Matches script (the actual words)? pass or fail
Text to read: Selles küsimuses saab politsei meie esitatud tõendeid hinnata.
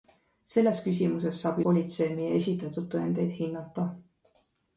pass